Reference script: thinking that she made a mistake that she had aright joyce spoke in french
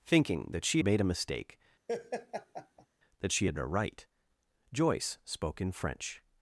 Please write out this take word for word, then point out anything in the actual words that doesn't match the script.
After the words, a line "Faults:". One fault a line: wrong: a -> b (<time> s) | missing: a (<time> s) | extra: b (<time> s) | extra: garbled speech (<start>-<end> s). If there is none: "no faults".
thinking that she made a mistake that she had aright joyce spoke in french
Faults:
no faults